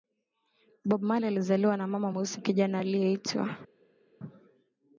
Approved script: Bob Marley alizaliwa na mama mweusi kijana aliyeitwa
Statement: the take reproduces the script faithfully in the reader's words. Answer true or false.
true